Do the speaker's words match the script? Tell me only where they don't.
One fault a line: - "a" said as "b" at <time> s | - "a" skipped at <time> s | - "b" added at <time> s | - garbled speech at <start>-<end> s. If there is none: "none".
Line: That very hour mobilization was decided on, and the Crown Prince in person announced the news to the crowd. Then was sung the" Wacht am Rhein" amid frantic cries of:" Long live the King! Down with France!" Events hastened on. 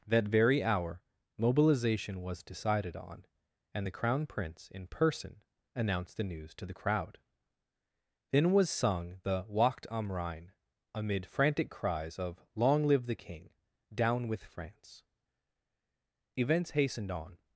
none